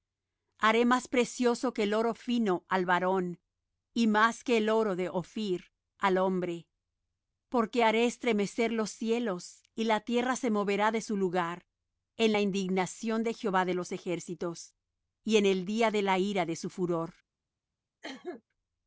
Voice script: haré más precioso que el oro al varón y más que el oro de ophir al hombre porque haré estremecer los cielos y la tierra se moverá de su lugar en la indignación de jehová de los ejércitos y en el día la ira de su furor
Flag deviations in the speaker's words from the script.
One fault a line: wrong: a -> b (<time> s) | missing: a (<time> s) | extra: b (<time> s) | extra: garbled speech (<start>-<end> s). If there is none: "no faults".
extra: fino (2.1 s)
extra: de (15.9 s)